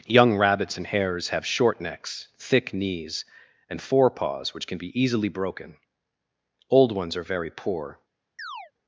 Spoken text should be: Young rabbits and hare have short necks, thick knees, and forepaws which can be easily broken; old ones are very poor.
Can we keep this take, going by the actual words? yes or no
no